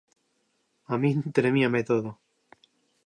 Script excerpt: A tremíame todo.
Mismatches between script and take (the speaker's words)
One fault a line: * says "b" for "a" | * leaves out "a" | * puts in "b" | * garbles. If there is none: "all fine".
* puts in "min"